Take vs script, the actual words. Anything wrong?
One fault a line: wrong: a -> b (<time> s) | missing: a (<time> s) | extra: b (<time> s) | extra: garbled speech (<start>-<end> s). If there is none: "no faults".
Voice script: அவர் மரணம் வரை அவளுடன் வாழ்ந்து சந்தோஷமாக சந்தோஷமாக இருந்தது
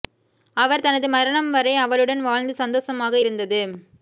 extra: தனது (0.8 s)
missing: சந்தோஷமாக (3.2 s)